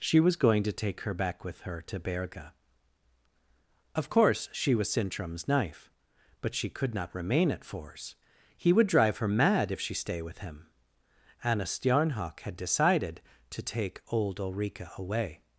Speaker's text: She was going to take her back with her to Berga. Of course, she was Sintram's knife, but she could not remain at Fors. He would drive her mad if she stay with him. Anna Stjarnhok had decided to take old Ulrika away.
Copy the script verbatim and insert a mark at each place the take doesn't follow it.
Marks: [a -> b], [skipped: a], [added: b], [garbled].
She was going to take her back with her to Berga. Of course, she was Sintram's knife, but she could not remain at Fors. He would drive her mad if she stay with him. Anna Stjarnhok had decided to take old Ulrika away.